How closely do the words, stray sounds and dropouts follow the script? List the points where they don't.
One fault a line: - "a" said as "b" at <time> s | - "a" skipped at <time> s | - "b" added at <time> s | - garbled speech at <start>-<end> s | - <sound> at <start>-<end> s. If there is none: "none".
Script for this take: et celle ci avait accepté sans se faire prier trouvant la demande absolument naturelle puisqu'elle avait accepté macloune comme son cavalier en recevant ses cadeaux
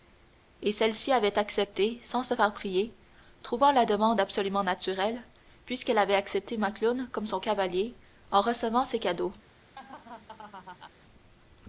- laugh at 9.7-10.9 s